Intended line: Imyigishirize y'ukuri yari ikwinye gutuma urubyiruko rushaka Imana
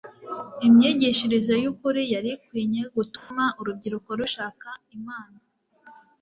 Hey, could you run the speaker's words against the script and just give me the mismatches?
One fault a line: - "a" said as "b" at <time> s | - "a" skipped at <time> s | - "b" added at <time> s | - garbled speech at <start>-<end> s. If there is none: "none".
none